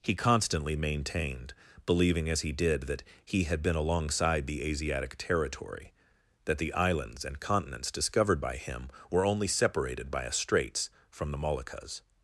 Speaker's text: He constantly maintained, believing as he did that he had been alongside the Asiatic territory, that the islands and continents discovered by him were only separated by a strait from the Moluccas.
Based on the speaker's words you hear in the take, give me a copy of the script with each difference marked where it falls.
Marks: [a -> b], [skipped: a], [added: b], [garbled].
He constantly maintained, believing as he did that he had been alongside the Asiatic territory, that the islands and continents discovered by him were only separated by a [strait -> straits] from the Moluccas.